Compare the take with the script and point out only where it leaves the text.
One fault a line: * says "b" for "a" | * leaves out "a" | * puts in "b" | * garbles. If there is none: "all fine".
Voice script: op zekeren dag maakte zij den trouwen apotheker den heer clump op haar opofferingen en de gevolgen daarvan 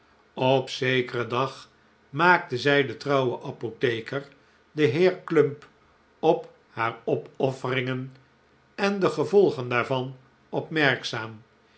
all fine